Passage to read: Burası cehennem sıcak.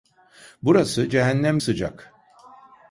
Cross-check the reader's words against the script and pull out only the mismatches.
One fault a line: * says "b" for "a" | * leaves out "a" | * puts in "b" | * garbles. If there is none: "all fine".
all fine